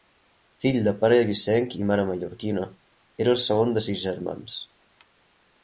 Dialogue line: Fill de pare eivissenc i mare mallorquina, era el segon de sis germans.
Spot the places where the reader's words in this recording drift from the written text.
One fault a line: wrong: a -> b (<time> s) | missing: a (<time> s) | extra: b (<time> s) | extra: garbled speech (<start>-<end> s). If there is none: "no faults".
no faults